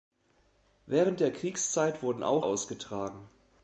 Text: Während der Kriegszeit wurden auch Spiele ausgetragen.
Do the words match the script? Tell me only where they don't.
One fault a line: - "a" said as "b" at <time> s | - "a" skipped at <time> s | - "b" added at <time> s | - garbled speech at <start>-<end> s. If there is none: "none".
- "Spiele" skipped at 2.5 s